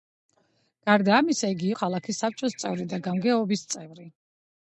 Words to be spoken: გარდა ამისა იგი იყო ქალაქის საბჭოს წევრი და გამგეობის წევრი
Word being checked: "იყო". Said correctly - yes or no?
no